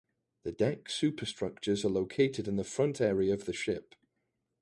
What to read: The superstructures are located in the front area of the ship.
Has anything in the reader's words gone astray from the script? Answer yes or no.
yes